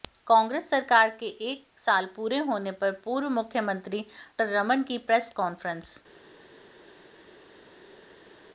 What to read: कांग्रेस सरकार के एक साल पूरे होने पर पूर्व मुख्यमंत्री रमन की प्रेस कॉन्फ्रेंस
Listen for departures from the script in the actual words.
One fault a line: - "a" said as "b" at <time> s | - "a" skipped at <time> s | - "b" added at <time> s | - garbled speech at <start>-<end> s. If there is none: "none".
none